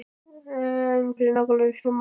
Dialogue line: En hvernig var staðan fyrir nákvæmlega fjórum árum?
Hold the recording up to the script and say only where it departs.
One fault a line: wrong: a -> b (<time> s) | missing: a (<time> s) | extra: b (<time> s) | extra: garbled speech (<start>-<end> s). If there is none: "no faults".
missing: hvernig var staðan (1.1 s)
missing: fjórum (1.9 s)